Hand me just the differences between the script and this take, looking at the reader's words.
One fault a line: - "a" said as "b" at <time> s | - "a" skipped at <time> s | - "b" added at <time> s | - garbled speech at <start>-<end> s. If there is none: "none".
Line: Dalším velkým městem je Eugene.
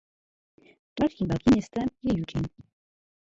none